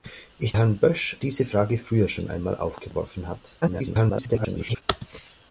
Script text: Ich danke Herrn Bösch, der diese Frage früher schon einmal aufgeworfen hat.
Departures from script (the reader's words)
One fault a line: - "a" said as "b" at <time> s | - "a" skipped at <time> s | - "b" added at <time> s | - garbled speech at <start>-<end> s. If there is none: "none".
- "danke" skipped at 0.6 s
- "der" skipped at 1.2 s
- garbled speech at 3.6-4.8 s